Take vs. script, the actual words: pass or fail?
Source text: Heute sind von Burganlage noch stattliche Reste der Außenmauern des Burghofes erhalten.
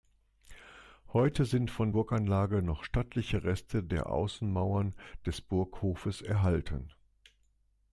pass